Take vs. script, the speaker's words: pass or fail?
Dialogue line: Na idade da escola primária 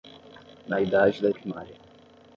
fail